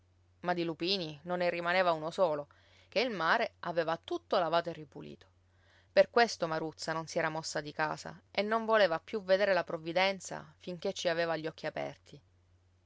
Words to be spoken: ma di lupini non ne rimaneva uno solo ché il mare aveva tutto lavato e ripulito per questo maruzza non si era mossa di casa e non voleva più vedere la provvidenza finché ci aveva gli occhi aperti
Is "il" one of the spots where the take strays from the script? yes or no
no